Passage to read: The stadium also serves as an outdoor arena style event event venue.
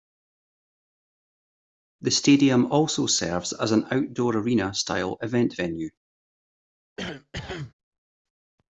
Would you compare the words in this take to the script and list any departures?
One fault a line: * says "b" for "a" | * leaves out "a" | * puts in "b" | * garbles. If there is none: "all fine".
* leaves out "event"